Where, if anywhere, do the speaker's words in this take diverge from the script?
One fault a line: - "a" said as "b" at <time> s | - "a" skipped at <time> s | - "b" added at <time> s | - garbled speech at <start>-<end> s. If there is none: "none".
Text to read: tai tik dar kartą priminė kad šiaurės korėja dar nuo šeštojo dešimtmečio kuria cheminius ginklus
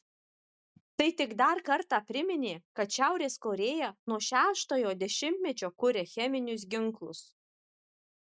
- "dar" skipped at 3.9 s